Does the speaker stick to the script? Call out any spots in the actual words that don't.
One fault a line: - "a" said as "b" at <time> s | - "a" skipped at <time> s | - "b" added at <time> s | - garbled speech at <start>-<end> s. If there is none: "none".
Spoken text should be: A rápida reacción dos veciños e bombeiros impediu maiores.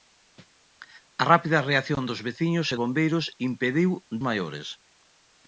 none